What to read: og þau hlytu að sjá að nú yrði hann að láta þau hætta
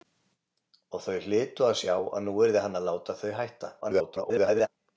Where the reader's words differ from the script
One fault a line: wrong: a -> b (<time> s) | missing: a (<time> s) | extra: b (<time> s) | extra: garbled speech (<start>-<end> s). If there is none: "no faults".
extra: garbled speech (3.8-4.7 s)